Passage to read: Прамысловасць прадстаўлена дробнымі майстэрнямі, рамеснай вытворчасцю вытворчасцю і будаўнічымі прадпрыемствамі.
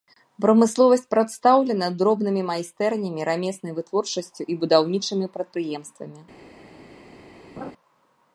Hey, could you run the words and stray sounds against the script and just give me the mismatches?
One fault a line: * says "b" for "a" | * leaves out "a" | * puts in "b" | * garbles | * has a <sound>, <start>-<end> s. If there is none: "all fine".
* leaves out "вытворчасцю"
* has a laugh, 7.6-7.7 s